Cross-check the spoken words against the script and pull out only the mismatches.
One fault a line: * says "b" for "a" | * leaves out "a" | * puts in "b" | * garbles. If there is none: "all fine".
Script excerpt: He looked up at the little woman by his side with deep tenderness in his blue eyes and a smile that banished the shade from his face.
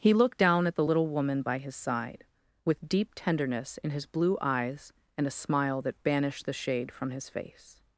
* says "down" for "up"